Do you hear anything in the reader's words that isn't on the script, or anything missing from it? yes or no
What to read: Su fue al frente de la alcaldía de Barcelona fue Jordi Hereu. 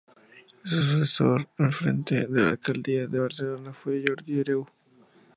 yes